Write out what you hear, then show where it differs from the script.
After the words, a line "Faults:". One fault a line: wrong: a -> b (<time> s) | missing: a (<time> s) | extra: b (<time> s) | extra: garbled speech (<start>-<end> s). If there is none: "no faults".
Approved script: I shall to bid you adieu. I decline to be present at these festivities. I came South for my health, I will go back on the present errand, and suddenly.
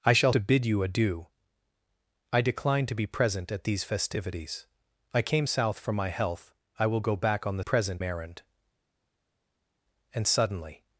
I shall to bid you adieu. I decline to be present at these festivities. I came South for my health, I will go back on the present errand, and suddenly.
Faults:
no faults